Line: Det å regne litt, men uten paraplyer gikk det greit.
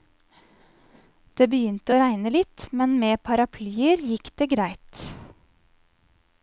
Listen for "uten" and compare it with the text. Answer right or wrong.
wrong